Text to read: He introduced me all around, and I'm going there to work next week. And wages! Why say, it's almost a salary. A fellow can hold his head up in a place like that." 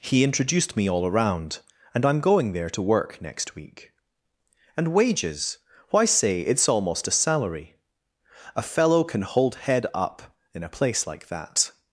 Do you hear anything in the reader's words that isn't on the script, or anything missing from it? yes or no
yes